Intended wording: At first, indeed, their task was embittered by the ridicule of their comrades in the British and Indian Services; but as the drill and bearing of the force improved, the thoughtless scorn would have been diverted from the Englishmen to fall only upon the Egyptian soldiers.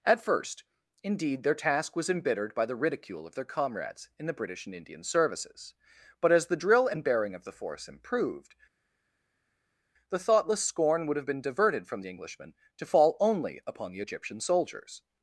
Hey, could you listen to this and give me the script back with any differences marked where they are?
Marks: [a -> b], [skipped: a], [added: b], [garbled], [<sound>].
At first, indeed, their task was embittered by the ridicule of their comrades in the British and Indian Services; but as the drill and bearing of the force improved, the thoughtless scorn would have been diverted from the Englishmen to fall only upon the Egyptian soldiers.